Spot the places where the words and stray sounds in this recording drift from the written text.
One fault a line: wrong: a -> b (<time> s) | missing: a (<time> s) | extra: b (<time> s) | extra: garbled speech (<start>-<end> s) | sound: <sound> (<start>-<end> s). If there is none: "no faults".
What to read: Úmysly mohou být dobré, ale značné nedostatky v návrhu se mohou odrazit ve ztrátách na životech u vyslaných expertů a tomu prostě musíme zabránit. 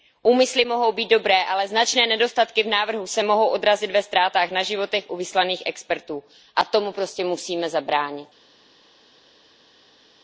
no faults